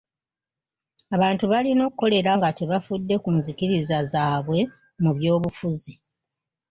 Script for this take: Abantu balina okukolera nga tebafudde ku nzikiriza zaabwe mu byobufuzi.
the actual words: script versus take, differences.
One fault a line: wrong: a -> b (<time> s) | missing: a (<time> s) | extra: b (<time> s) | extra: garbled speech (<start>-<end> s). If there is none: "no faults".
no faults